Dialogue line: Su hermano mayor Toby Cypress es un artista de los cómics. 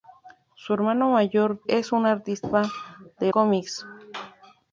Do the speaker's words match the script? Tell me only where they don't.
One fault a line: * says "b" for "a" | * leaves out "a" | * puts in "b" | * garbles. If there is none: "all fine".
* leaves out "Toby Cypress"
* leaves out "los"